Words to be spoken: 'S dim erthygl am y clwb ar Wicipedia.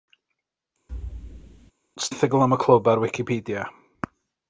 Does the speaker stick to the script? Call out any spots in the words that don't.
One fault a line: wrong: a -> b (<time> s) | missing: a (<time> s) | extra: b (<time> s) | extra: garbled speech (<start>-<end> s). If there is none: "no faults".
missing: dim (2.1 s)